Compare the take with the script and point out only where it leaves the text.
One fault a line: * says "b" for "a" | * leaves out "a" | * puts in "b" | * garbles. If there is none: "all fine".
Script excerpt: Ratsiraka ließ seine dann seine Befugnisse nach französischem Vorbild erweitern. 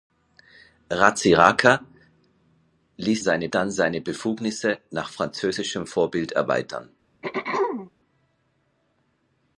all fine